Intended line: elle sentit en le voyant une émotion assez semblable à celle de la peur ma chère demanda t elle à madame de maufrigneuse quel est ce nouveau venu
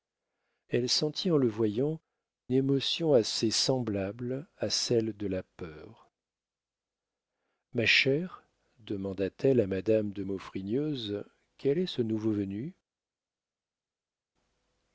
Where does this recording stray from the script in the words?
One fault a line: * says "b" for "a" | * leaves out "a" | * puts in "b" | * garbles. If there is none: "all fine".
* leaves out "une"